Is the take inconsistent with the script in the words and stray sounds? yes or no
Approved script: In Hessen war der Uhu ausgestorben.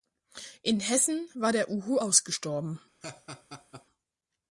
yes